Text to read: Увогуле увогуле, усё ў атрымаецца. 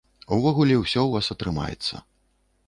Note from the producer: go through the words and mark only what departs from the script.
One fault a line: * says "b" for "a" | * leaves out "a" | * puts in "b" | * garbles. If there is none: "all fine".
* leaves out "увогуле"
* puts in "вас"